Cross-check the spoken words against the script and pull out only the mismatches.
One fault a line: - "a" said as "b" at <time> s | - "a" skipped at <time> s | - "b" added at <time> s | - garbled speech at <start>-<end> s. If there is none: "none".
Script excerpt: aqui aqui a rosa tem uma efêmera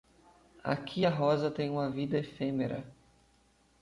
- "aqui" skipped at 1.1 s
- "vida" added at 1.9 s